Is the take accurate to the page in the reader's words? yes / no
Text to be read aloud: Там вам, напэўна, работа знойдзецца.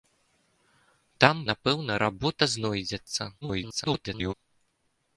no